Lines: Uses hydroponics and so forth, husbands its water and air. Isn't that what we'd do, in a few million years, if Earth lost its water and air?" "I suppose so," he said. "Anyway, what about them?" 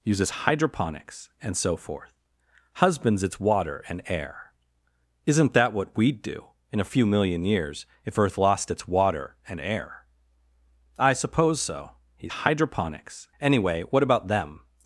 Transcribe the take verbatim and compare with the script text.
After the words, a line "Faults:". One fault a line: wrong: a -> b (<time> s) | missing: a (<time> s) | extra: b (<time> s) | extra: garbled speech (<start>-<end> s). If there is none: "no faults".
Uses hydroponics and so forth, husbands its water and air. Isn't that what we'd do, in a few million years, if Earth lost its water and air?" "I suppose so," he hydroponics. "Anyway, what about them?"
Faults:
wrong: said -> hydroponics (12.3 s)